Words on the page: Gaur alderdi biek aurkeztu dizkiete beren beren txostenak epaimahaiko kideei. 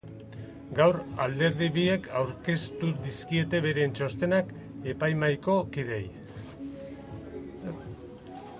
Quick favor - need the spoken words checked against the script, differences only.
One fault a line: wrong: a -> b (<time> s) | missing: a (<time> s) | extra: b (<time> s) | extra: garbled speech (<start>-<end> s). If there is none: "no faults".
missing: beren (3.9 s)